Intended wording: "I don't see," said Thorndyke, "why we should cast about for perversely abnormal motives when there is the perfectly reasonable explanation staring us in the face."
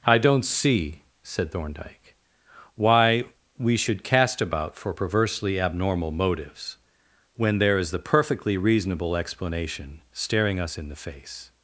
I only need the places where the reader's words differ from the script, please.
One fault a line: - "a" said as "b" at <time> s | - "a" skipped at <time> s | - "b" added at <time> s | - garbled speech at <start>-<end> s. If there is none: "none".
none